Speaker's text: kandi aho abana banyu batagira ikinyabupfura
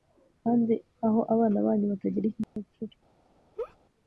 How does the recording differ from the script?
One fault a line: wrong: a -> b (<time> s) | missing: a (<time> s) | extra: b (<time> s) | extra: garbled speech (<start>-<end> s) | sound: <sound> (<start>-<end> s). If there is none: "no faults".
sound: dropout (2.4-2.6 s)
sound: laugh (3.6-3.8 s)